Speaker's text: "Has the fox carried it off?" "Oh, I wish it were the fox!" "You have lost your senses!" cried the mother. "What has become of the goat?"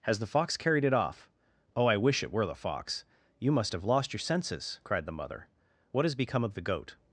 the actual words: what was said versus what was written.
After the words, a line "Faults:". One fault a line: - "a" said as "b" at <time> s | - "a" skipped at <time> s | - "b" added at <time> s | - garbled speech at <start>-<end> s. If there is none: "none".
"Has the fox carried it off?" "Oh, I wish it were the fox!" "You must have lost your senses!" cried the mother. "What has become of the goat?"
Faults:
- "must" added at 3.5 s